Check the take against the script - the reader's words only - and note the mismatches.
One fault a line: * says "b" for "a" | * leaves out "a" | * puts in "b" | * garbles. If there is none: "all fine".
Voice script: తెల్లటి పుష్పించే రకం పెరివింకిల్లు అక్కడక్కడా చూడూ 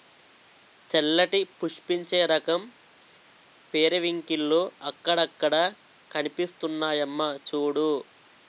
* puts in "కనిపిస్తున్నాయమ్మా"